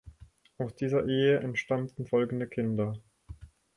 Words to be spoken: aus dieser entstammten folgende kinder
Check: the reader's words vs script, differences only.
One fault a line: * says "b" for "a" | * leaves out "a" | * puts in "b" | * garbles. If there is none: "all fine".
* puts in "ehe"